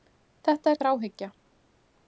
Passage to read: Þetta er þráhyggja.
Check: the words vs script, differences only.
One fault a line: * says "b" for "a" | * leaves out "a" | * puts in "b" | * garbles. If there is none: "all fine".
all fine